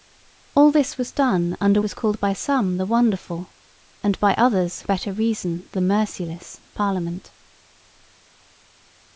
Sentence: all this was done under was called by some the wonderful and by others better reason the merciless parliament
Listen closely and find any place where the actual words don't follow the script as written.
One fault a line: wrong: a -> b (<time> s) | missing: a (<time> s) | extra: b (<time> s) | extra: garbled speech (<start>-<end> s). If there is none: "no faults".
no faults